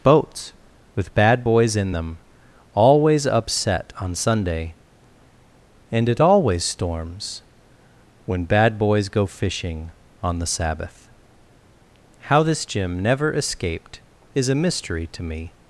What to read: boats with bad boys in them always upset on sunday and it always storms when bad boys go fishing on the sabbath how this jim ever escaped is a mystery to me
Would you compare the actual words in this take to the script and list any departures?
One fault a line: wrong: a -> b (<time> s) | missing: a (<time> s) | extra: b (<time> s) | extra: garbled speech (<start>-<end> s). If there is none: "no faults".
wrong: ever -> never (13.0 s)